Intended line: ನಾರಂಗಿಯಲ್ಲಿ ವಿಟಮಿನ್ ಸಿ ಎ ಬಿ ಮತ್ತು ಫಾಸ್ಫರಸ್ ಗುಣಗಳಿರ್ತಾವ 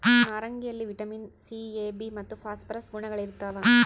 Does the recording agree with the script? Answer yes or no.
yes